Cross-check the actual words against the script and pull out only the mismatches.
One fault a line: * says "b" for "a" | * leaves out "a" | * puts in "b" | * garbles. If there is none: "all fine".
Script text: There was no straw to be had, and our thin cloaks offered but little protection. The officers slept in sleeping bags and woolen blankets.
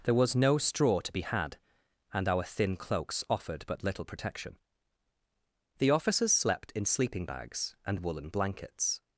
all fine